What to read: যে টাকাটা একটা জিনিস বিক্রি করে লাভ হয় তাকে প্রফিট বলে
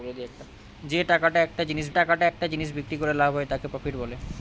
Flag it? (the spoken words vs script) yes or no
yes